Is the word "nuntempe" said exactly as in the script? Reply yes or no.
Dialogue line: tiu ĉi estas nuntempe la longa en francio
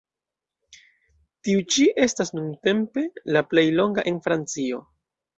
yes